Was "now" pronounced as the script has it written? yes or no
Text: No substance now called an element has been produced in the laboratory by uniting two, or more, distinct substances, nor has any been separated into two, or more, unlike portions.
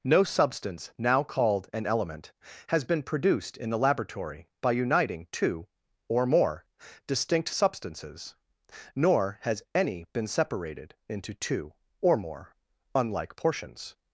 yes